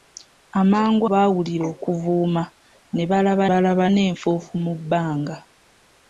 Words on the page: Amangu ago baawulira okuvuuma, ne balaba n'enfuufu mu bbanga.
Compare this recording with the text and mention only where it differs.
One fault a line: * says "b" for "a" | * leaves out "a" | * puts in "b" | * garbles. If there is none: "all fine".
* leaves out "ago"
* puts in "balaba"